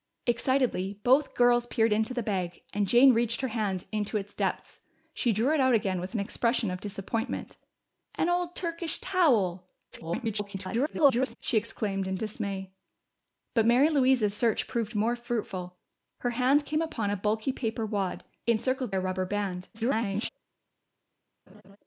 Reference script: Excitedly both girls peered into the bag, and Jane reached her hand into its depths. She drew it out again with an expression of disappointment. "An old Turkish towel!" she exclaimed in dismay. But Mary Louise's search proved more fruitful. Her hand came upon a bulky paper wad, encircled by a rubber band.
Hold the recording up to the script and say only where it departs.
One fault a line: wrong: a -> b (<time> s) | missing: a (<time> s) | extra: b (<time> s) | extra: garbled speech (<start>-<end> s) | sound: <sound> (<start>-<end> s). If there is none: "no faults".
extra: garbled speech (9.9-11.4 s)
missing: by (18.9 s)
extra: garbled speech (19.7-20.3 s)
sound: laugh (21.5-21.8 s)